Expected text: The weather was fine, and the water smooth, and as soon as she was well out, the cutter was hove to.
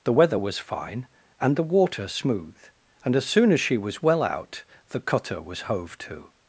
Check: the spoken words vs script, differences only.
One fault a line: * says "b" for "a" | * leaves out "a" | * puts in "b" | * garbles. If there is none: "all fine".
all fine